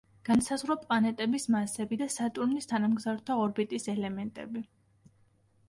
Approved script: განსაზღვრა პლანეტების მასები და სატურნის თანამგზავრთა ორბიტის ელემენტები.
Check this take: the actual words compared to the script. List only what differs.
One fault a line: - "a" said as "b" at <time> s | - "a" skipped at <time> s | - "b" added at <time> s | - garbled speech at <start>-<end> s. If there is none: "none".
none